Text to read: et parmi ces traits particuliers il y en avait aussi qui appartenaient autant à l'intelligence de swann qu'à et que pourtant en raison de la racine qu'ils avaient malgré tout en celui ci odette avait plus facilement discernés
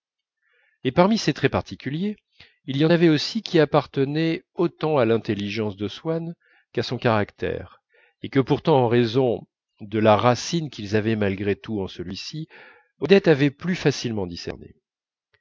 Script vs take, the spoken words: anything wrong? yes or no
yes